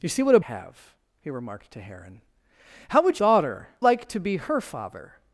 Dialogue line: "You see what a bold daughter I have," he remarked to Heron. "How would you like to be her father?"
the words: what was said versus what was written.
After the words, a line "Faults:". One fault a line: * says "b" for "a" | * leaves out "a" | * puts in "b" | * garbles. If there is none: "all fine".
"You see what a have," he remarked to Heron. "How would daughter like to be her father?"
Faults:
* leaves out "bold daughter I"
* says "daughter" for "you"